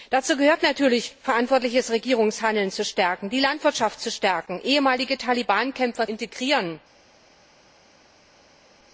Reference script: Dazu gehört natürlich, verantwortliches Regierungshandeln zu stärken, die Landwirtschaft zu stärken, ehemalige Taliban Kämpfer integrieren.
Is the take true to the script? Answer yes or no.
yes